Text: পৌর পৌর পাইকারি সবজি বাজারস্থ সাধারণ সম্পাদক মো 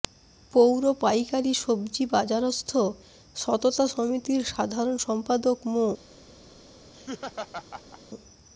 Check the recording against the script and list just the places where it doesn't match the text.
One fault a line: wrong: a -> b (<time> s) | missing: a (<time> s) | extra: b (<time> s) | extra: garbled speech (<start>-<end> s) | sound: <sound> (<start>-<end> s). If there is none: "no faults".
missing: পৌর (0.8 s)
extra: সততা সমিতির (3.4 s)
sound: laugh (6.9-8.0 s)